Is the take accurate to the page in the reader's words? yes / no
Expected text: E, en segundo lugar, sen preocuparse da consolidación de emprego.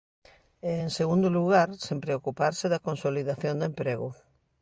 yes